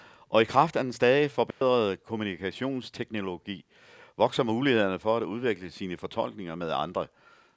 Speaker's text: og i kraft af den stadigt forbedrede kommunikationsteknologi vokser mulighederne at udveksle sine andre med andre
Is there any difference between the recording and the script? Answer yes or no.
yes